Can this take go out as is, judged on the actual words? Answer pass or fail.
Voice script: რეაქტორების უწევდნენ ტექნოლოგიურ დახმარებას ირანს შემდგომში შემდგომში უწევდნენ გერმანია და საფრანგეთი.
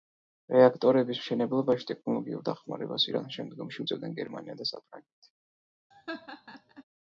fail